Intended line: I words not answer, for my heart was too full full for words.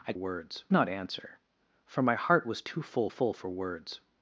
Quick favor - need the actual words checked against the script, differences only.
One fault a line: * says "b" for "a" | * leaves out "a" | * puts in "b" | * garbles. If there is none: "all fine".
all fine